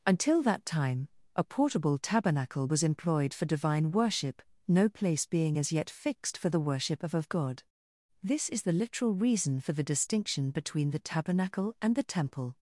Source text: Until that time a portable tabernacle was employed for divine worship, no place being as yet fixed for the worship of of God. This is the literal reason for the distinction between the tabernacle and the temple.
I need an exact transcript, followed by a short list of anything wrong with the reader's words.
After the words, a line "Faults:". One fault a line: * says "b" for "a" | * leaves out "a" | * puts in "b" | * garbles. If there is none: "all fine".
Until that time a portable tabernacle was employed for divine worship, no place being as yet fixed for the worship of of God. This is the literal reason for the distinction between the tabernacle and the temple.
Faults:
all fine